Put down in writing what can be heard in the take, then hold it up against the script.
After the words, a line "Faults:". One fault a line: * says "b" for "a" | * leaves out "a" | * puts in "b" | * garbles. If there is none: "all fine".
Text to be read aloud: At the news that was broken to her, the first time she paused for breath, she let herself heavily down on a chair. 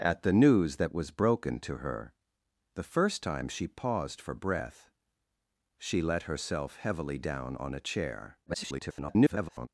At the news that was broken to her, the first time she paused for breath, she let herself heavily down on a chair. [garbled]
Faults:
* garbles